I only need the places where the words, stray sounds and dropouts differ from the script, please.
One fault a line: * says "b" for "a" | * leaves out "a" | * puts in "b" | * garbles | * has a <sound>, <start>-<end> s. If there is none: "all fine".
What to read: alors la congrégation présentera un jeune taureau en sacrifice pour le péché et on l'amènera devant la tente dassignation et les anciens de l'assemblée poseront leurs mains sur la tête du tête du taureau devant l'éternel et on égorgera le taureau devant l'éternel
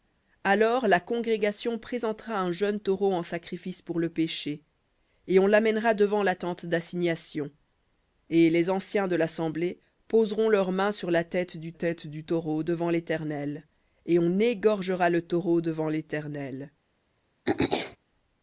* has a throat clearing, 17.5-18.0 s